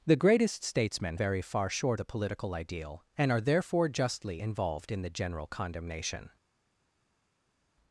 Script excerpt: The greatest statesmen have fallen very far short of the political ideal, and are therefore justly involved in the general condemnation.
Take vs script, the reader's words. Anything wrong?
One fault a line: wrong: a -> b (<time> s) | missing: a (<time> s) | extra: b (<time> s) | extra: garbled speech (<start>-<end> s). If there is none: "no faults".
missing: have fallen (1.2 s)
missing: of (2.0 s)